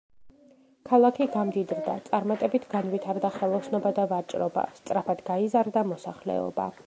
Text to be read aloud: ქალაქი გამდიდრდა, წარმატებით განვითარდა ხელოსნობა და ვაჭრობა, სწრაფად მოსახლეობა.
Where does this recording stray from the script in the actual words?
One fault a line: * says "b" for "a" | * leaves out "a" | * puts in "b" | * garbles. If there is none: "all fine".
* puts in "გაიზარდა"